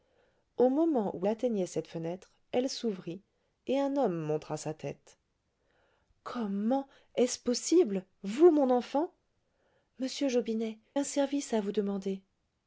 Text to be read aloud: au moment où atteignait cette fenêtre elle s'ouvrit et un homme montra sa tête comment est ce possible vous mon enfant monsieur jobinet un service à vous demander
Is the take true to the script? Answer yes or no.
yes